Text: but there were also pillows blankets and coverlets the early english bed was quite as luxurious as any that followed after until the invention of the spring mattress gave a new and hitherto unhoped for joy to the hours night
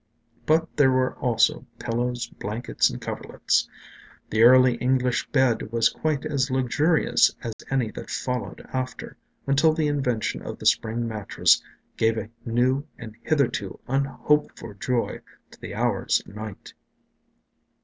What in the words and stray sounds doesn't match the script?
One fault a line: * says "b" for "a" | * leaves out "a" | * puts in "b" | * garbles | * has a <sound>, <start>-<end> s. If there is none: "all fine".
* has a dropout, 7.5-7.6 s